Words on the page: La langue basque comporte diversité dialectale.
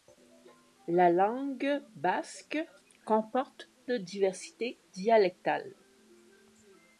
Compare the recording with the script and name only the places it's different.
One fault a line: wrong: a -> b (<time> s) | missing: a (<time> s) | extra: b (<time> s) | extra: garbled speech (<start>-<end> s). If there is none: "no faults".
no faults